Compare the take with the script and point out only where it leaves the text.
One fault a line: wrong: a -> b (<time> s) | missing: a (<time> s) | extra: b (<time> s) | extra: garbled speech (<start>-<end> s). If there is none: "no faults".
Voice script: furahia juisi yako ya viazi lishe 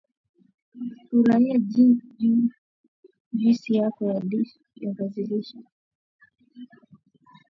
no faults